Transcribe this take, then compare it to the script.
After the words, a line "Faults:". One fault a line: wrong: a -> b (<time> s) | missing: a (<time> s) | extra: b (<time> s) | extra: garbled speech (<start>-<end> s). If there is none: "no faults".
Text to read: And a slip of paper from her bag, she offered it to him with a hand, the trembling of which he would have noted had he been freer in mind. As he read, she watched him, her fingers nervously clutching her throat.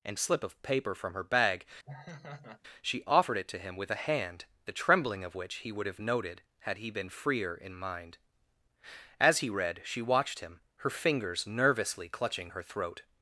And a slip of paper from her bag, she offered it to him with a hand, the trembling of which he would have noted had he been freer in mind. As he read, she watched him, her fingers nervously clutching her throat.
Faults:
no faults